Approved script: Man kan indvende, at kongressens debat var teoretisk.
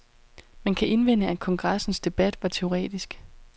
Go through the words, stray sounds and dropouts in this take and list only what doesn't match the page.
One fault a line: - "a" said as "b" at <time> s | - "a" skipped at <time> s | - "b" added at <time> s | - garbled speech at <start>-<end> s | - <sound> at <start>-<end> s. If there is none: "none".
none